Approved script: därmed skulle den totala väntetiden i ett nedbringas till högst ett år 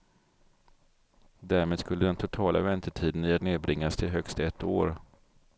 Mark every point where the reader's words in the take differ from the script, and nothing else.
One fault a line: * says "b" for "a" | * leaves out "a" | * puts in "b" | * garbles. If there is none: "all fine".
all fine